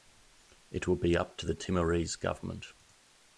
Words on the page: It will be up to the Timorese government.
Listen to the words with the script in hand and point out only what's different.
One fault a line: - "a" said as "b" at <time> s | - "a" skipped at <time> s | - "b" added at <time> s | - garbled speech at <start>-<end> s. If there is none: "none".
none